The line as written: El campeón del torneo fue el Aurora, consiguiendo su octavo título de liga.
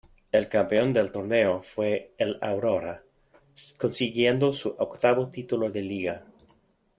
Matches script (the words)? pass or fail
pass